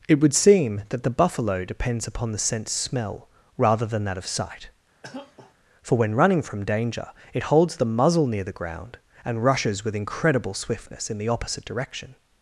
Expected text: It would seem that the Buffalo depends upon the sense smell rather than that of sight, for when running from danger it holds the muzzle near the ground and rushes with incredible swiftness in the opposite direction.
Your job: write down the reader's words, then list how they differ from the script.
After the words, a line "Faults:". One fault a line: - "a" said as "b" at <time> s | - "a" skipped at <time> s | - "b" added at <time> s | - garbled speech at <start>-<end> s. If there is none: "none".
It would seem that the Buffalo depends upon the sense smell rather than that of sight, for when running from danger it holds the muzzle near the ground and rushes with incredible swiftness in the opposite direction.
Faults:
none